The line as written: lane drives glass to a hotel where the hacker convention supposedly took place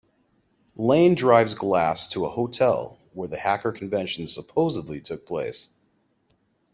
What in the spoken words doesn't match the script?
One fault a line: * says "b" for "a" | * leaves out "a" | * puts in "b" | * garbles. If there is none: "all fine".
all fine